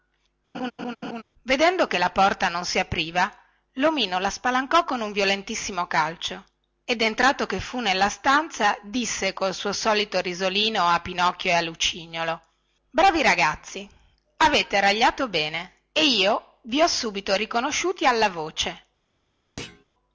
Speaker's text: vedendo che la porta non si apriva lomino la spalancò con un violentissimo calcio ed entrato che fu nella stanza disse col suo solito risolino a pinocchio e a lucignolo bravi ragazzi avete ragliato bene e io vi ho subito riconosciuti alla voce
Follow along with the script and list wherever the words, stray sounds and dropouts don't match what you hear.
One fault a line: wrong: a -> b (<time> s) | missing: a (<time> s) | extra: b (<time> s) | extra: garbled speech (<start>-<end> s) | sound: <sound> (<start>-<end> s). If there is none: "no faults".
sound: laugh (0.5-1.2 s)
sound: thud (19.6-19.8 s)